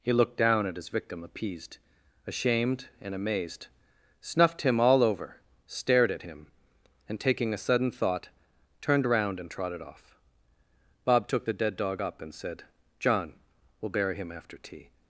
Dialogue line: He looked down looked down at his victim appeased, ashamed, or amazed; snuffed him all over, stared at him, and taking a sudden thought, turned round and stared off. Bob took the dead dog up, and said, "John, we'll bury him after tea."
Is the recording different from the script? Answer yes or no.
yes